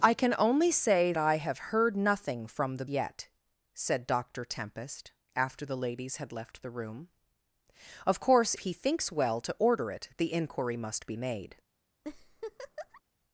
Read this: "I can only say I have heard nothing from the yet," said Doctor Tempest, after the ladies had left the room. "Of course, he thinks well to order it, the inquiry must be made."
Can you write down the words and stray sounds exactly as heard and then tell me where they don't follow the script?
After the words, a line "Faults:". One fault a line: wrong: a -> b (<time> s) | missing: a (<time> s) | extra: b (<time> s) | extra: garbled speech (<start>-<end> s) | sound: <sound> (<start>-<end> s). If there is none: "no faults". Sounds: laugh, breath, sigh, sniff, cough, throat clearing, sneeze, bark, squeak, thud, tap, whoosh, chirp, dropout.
"I can only say I have heard nothing from the yet," said Doctor Tempest, after the ladies had left the room. "Of course, he thinks well to order it, the inquiry must be made."
Faults:
sound: laugh (12.0-13.0 s)